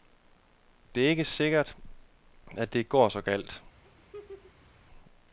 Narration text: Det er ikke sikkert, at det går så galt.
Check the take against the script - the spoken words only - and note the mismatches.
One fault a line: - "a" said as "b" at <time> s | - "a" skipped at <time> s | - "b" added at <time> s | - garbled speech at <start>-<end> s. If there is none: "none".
none